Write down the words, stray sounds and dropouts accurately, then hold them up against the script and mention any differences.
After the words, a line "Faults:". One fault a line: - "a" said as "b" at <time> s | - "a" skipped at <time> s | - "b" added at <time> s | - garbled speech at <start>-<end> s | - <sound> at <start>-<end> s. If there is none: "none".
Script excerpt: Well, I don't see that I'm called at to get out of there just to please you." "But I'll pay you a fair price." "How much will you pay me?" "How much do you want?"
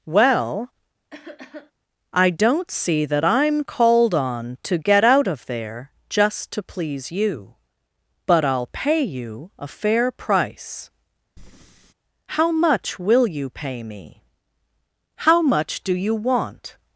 Well, I don't see that I'm called on to get out of there just to please you." "But I'll pay you a fair price." "How much will you pay me?" "How much do you want?"
Faults:
- cough at 1.1-1.7 s
- "at" said as "on" at 4.1 s
- breath at 11.4-11.9 s